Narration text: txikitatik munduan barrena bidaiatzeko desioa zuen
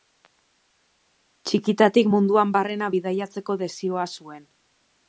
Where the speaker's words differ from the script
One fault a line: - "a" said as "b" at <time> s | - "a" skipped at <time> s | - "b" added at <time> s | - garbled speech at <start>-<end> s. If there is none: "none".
none